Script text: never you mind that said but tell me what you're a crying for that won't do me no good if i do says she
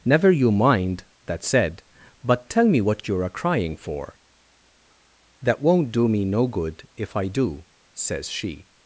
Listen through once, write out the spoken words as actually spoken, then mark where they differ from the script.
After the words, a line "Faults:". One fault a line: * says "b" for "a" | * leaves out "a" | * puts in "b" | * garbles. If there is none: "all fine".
never you mind that said but tell me what you're a crying for that won't do me no good if i do says she
Faults:
all fine